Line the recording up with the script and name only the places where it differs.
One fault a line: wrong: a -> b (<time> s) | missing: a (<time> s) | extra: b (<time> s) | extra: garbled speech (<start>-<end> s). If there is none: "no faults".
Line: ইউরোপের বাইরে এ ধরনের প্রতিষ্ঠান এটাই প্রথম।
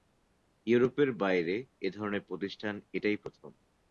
no faults